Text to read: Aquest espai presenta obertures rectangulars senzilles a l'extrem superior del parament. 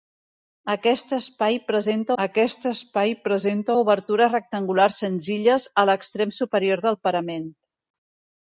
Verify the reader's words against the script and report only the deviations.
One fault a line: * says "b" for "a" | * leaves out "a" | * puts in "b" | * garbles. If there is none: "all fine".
* puts in "aquest espai presenta"